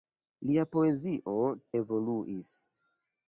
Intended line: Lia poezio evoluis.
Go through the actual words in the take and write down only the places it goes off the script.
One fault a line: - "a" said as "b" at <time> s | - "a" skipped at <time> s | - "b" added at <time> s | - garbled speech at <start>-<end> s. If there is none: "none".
none